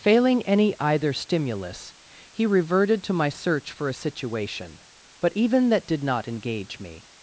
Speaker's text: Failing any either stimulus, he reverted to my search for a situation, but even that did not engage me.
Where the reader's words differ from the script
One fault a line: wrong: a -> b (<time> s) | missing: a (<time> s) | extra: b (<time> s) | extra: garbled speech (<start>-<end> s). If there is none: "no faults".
no faults